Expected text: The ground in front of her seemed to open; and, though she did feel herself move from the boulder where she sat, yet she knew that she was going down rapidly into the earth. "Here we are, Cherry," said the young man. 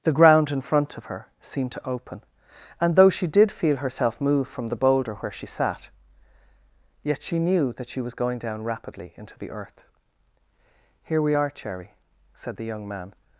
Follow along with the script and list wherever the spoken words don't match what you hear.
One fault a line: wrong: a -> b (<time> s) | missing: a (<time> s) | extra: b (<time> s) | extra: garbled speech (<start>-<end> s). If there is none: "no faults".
no faults